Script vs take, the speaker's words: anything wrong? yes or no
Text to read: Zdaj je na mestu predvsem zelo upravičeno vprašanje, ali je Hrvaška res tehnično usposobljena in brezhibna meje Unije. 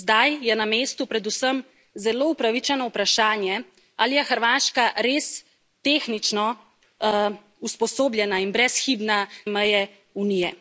no